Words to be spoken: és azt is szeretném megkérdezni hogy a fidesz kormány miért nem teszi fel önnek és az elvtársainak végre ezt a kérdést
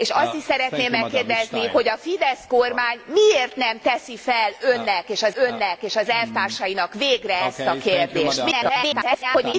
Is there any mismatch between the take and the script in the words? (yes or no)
yes